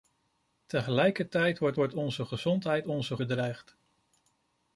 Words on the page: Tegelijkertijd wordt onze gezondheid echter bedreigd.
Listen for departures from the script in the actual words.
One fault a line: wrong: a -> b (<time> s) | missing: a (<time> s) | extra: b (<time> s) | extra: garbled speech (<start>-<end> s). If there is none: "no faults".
extra: wordt (1.7 s)
wrong: echter -> onze (2.8 s)